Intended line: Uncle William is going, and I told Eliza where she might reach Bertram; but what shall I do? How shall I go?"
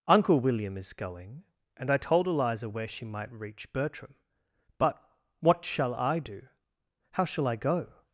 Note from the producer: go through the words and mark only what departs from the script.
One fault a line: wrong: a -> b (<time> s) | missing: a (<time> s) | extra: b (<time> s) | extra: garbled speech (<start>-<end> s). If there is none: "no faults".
no faults